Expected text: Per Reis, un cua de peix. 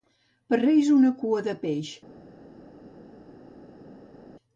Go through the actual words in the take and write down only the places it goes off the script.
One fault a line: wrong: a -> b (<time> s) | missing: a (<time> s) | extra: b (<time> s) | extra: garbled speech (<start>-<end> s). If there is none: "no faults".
wrong: un -> una (1.0 s)